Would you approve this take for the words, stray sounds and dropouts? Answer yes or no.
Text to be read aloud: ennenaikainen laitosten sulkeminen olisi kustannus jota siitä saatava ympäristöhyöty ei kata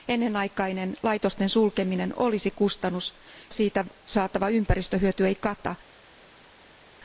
no